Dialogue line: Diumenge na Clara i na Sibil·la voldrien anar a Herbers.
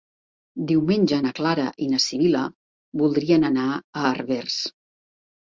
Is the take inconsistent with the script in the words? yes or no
no